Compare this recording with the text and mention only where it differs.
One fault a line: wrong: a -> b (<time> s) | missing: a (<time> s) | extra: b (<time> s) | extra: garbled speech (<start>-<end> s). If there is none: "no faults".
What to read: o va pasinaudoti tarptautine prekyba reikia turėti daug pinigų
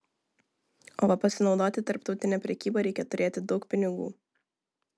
no faults